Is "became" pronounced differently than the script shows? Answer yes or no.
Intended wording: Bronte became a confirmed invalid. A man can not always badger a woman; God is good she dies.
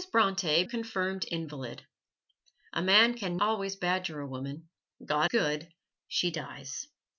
yes